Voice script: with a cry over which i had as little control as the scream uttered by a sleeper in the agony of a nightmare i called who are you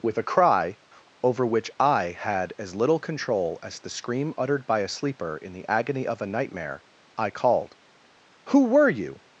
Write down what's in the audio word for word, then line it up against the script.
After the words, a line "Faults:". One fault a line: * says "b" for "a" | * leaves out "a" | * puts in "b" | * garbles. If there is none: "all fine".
with a cry over which i had as little control as the scream uttered by a sleeper in the agony of a nightmare i called who were you
Faults:
* says "were" for "are"